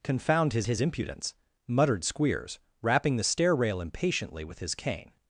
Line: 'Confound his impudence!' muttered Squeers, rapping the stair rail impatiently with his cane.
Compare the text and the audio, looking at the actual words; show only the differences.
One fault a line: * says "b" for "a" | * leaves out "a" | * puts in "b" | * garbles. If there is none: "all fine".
* puts in "his"